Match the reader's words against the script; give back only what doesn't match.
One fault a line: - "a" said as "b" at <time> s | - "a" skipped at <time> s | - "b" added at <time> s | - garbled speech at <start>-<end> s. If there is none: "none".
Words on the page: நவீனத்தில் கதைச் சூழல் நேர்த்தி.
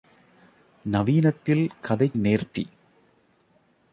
- "சூழல்" skipped at 2.2 s